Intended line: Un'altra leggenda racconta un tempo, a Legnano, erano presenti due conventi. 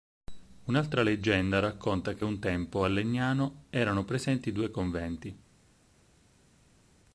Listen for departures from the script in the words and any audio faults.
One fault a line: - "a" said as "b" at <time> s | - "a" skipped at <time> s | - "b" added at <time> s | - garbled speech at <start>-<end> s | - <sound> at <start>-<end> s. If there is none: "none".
- "che" added at 2.1 s